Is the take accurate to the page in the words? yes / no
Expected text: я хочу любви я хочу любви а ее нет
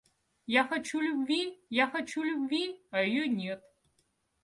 yes